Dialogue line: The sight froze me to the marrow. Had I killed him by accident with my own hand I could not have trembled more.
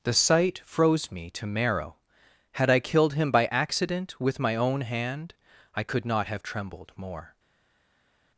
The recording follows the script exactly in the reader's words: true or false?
false